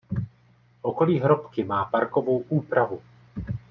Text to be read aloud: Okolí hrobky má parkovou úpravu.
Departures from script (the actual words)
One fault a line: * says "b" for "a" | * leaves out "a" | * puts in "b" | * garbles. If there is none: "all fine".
all fine